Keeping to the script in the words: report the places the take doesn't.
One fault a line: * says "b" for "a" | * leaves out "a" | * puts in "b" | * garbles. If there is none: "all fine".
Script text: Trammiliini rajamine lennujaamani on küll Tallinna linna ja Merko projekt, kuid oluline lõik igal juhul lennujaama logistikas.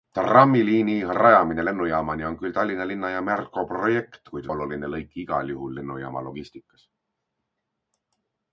all fine